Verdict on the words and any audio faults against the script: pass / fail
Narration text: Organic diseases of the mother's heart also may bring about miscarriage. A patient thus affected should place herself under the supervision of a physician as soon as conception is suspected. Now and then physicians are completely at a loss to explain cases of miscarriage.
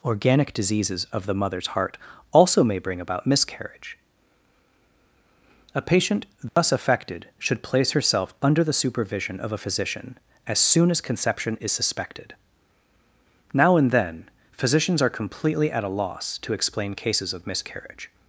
fail